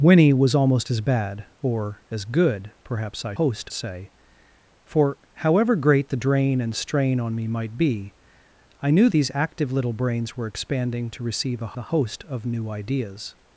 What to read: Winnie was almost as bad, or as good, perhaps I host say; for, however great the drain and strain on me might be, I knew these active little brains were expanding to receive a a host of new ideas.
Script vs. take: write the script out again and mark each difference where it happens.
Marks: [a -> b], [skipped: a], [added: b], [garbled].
Winnie was almost as bad, or as good, perhaps I host say; for, however great the drain and strain on me might be, I knew these active little brains were expanding to receive a a host of new ideas.